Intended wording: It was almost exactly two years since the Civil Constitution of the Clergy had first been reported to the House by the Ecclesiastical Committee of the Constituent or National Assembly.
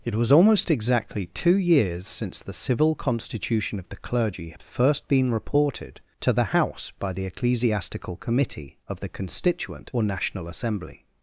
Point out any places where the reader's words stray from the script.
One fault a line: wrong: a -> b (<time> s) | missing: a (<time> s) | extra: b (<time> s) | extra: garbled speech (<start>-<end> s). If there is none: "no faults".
no faults